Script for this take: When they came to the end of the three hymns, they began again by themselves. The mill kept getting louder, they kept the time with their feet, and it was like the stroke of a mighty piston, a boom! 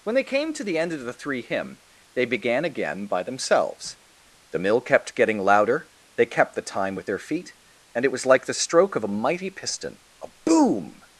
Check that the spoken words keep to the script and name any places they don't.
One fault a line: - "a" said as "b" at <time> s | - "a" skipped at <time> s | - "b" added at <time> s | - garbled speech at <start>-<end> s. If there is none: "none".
- "hymns" said as "hymn" at 1.4 s